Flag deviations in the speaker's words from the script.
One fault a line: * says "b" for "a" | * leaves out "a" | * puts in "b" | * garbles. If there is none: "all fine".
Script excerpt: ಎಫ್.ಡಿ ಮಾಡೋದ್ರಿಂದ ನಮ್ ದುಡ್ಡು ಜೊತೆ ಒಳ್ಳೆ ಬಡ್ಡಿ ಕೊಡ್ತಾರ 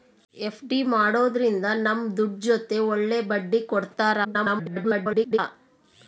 * garbles